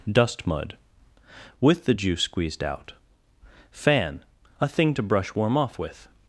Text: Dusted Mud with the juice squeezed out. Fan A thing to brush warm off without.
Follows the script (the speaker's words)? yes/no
no